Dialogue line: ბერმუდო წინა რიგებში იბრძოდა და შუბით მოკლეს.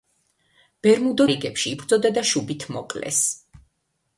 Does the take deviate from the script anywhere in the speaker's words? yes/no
yes